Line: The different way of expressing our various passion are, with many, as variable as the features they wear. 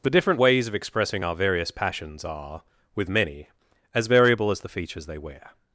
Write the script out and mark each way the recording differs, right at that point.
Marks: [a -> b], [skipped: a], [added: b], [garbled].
The different [way -> ways] of expressing our various [passion -> passions] are, with many, as variable as the features they wear.